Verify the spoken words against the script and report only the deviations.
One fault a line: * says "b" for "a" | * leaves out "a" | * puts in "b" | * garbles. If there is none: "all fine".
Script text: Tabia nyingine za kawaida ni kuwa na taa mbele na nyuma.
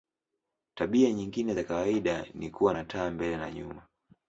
all fine